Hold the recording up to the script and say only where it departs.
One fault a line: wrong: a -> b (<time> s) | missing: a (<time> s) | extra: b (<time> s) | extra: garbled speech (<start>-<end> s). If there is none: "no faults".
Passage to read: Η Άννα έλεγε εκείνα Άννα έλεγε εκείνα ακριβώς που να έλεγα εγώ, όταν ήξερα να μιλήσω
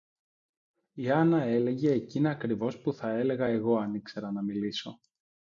missing: Άννα έλεγε εκείνα (2.3 s)
wrong: να -> θα (2.9 s)
wrong: όταν -> αν (3.8 s)